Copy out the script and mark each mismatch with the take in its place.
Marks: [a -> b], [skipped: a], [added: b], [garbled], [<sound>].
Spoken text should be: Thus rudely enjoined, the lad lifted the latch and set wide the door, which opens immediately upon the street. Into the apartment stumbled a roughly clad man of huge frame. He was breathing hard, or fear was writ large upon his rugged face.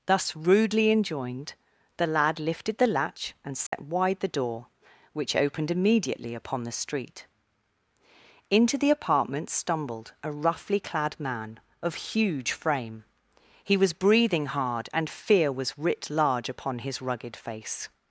Thus rudely enjoined, the lad lifted the latch and set [dropout] wide the door, which [opens -> opened] immediately upon the street. Into the apartment stumbled a roughly clad man of huge frame. He was breathing hard, [or -> and] fear was writ large upon his rugged face.